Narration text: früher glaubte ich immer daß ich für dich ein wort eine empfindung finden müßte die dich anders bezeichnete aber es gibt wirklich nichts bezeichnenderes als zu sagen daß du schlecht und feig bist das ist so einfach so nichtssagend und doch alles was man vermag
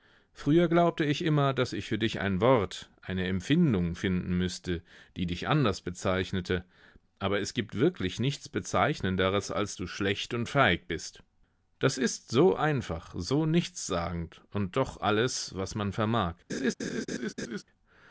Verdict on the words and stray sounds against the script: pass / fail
fail